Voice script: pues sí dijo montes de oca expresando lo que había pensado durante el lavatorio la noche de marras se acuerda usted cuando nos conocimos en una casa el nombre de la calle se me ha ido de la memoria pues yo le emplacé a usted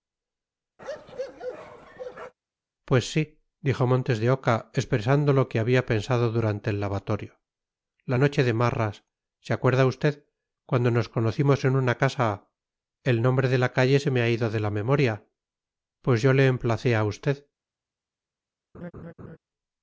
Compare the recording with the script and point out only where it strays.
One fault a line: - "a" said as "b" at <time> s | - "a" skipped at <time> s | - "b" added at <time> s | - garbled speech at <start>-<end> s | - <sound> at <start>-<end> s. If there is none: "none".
- bark at 0.8-2.3 s
- laugh at 18.7-19.4 s